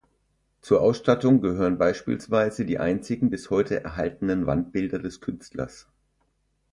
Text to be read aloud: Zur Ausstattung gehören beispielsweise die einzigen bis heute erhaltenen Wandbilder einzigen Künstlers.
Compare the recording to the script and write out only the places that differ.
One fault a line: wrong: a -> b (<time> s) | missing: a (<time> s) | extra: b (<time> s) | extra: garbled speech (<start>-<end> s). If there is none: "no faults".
wrong: einzigen -> des (5.0 s)